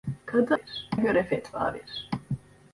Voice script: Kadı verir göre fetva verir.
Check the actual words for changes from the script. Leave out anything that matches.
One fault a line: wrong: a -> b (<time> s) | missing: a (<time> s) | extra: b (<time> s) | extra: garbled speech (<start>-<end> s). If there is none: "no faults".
no faults